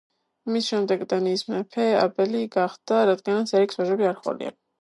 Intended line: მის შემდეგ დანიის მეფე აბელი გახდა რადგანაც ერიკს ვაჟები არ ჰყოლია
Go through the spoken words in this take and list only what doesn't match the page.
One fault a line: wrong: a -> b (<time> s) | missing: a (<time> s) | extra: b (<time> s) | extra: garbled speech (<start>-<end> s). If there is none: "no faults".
no faults